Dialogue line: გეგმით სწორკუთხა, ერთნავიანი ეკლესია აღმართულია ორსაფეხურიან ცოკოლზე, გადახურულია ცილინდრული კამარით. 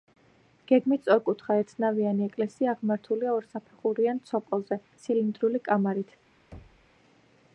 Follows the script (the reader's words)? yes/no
no